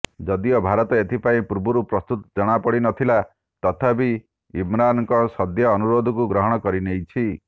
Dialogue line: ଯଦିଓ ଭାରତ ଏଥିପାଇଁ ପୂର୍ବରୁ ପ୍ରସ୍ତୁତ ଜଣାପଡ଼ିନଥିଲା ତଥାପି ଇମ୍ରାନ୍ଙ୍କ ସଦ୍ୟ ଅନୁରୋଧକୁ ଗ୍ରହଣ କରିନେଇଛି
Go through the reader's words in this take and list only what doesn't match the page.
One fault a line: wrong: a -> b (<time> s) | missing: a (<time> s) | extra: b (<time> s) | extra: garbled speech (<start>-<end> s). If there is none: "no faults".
no faults